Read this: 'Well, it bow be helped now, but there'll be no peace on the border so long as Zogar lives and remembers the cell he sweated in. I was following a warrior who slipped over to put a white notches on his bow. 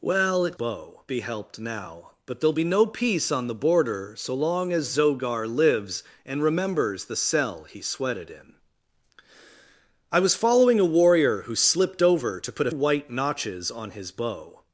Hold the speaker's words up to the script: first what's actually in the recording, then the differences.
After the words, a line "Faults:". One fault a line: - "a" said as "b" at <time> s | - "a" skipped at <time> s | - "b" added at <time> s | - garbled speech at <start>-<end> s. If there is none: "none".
'Well, it bow be helped now, but there'll be no peace on the border so long as Zogar lives and remembers the cell he sweated in. I was following a warrior who slipped over to put a white notches on his bow.
Faults:
none